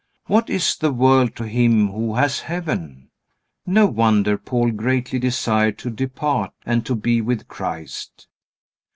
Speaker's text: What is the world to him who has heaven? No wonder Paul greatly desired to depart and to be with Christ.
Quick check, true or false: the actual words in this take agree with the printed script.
true